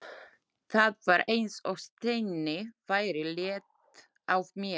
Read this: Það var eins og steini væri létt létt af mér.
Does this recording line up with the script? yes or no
no